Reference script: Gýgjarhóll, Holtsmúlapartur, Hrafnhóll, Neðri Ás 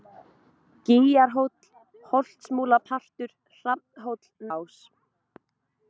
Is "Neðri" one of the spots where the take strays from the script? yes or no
yes